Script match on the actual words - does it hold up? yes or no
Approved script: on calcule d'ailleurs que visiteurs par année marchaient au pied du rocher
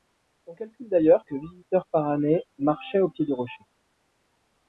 yes